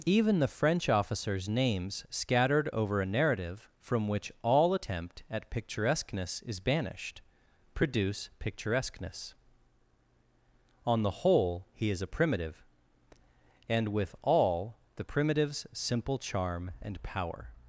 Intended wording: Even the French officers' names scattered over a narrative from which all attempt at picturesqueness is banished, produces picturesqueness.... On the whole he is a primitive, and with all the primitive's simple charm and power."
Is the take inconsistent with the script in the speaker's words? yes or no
yes